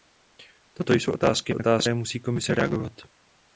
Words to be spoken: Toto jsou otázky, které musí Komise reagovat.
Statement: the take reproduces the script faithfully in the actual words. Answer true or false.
false